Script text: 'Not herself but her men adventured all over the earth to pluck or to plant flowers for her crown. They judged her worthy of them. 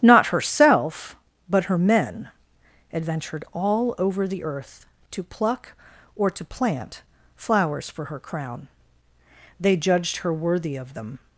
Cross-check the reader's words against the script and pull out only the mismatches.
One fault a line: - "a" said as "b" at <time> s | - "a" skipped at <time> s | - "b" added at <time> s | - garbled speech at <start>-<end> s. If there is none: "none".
none